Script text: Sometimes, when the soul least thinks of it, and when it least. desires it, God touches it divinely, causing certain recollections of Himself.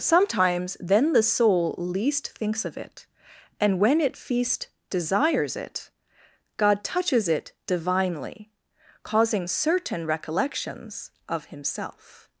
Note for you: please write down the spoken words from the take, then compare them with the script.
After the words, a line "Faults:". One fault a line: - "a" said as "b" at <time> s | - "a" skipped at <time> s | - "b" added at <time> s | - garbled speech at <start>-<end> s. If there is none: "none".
Sometimes, then the soul least thinks of it, and when it feast. desires it, God touches it divinely, causing certain recollections of Himself.
Faults:
- "when" said as "then" at 0.8 s
- "least" said as "feast" at 4.2 s